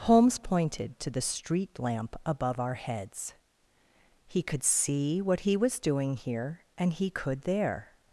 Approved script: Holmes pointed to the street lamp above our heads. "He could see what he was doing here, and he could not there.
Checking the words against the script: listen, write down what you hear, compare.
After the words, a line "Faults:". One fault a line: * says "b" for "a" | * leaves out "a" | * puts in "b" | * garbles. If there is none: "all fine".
Holmes pointed to the street lamp above our heads. "He could see what he was doing here, and he could there.
Faults:
* leaves out "not"